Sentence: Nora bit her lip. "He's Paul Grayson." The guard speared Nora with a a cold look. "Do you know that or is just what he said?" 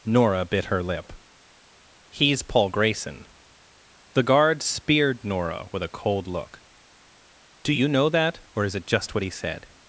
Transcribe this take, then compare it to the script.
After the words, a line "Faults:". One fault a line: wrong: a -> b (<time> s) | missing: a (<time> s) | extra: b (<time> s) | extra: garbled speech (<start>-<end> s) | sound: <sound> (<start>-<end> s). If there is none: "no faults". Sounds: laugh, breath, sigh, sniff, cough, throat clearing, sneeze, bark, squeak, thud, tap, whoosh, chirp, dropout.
Nora bit her lip. "He's Paul Grayson." The guard speared Nora with a cold look. "Do you know that or is it just what he said?"
Faults:
missing: a (6.0 s)
extra: it (8.7 s)